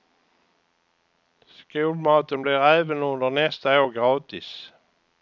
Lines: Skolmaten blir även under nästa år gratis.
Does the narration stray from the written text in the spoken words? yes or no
no